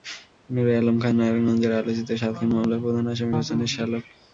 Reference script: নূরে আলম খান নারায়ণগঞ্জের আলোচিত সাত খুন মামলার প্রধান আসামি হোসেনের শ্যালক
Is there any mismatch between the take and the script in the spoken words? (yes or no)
no